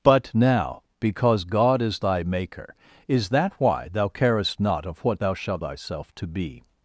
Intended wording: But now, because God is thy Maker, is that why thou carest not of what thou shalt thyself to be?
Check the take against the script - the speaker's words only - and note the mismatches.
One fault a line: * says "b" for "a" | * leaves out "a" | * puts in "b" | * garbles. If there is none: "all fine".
all fine